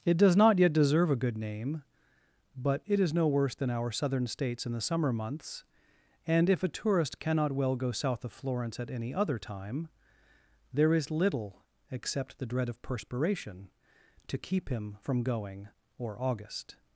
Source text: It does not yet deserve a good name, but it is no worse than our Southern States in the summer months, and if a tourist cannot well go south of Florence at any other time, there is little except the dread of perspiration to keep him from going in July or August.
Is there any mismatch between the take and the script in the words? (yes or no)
yes